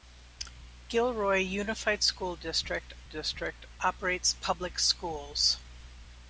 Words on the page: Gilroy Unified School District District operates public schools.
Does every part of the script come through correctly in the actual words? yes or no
yes